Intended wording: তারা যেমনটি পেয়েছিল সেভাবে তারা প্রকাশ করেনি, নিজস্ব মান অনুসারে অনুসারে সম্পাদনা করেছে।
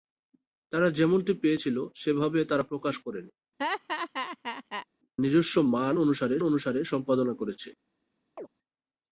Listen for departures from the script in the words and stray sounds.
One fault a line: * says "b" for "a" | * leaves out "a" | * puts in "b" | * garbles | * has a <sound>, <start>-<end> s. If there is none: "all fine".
* has a laugh, 3.6-4.9 s
* has a chirp, 8.4-8.5 s